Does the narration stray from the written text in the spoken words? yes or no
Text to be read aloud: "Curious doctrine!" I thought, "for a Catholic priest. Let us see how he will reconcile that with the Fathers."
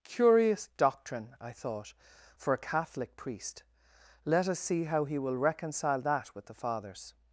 no